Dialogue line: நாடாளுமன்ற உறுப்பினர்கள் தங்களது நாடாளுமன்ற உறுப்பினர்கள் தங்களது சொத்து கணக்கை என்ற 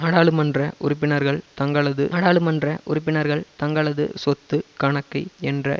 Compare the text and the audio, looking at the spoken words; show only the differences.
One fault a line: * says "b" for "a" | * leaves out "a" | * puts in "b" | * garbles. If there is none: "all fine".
all fine